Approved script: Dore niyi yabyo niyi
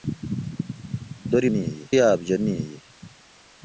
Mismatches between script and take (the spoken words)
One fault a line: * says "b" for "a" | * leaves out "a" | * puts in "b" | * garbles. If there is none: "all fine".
all fine